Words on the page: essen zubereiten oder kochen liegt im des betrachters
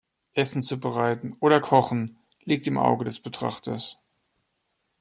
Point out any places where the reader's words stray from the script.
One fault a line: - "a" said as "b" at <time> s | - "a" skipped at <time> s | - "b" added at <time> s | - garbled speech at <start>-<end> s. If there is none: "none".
- "auge" added at 2.8 s